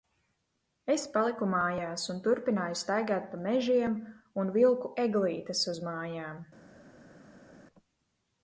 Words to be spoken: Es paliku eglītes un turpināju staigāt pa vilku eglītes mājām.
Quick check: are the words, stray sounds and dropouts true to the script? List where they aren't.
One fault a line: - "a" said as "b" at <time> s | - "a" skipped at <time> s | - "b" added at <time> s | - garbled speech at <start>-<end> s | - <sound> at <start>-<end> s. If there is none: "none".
- "eglītes" said as "mājās" at 1.5 s
- "mežiem un" added at 3.5 s
- "uz" added at 5.7 s